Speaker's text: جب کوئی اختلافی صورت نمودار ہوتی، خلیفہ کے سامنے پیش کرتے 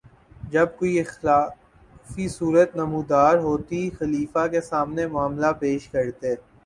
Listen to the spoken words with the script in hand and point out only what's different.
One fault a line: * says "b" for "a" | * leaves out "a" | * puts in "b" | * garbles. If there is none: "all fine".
* puts in "معاملہ"